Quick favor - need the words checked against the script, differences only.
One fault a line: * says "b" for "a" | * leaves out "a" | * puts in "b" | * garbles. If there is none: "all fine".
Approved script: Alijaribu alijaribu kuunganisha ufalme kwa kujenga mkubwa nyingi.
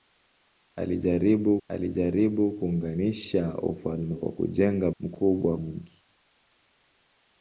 all fine